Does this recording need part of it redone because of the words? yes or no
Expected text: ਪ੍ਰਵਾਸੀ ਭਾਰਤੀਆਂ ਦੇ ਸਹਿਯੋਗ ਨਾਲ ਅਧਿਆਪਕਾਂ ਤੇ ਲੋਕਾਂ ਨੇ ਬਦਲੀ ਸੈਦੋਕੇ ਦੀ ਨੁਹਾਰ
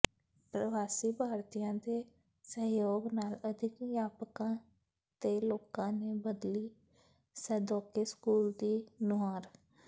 yes